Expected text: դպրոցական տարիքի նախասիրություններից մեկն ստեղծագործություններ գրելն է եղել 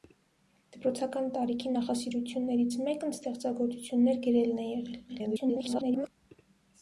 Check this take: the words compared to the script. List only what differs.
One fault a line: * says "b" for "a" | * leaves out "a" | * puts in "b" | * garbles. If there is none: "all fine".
* garbles